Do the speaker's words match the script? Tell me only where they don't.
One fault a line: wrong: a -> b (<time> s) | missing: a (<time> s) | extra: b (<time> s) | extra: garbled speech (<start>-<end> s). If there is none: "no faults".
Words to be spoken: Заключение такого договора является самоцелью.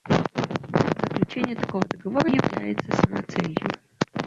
no faults